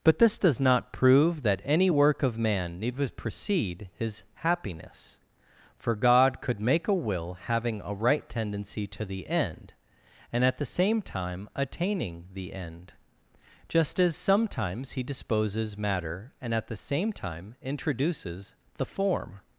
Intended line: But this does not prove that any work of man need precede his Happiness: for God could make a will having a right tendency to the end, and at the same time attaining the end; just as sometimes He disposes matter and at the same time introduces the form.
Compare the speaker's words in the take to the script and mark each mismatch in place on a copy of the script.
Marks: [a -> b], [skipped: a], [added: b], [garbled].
But this does not prove that any work of man need precede his Happiness: for God could make a will having a right tendency to the end, and at the same time attaining the end; just as sometimes He disposes matter and at the same time introduces the form.